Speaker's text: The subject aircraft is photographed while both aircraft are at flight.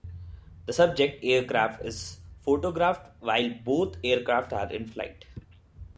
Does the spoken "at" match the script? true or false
false